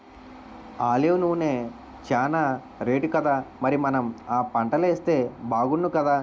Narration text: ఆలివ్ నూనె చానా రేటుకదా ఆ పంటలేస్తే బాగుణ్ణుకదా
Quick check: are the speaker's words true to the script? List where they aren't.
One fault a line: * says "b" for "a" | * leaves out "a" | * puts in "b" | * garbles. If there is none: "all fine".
* puts in "మరి మనం"